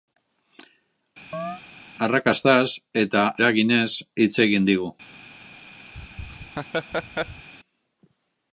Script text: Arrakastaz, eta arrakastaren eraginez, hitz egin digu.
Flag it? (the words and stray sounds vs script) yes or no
yes